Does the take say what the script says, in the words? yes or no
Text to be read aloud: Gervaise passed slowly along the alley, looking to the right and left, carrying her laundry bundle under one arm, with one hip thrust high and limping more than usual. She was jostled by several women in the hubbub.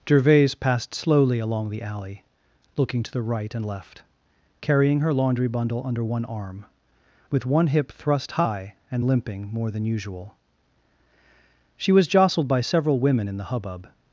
yes